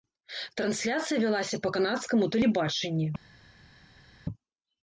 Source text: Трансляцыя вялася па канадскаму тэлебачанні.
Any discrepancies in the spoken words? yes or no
no